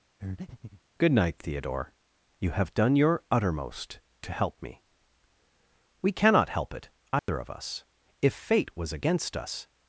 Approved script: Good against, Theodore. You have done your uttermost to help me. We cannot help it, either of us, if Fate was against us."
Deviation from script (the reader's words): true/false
true